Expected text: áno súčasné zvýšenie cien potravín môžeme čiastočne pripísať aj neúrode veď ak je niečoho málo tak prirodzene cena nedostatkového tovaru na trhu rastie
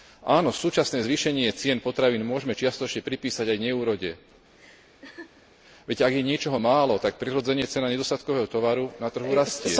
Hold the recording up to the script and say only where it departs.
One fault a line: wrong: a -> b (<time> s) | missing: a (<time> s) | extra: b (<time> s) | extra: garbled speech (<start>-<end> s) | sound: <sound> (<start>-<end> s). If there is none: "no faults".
sound: laugh (4.6-5.5 s)